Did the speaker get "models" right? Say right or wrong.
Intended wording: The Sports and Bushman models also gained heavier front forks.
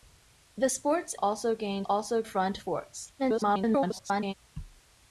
wrong